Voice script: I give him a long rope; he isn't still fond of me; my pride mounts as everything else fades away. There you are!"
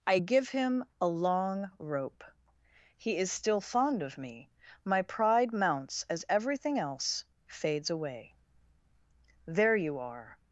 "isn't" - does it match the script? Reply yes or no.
no